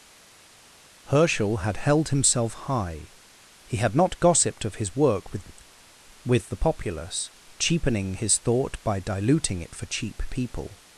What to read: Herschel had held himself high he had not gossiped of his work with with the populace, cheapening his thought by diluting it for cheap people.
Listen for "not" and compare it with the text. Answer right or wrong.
right